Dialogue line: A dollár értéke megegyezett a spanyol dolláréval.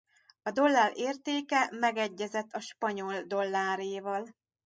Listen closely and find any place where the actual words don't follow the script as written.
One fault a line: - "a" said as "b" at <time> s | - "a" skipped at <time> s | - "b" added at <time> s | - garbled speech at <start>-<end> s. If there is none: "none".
none